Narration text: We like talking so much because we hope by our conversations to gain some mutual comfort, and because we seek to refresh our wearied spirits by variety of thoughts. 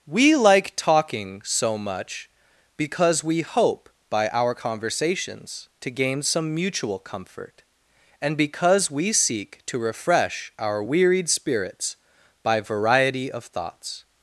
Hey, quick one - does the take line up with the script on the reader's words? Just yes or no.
yes